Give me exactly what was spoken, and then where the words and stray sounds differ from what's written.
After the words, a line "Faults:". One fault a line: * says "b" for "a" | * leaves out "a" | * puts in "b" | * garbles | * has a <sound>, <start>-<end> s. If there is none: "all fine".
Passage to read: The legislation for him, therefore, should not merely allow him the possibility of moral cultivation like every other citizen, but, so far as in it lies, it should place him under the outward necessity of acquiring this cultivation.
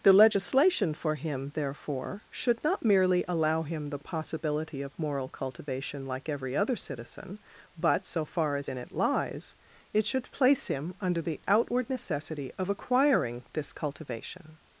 The legislation for him, therefore, should not merely allow him the possibility of moral cultivation like every other citizen, but, so far as in it lies, it should place him under the outward necessity of acquiring this cultivation.
Faults:
all fine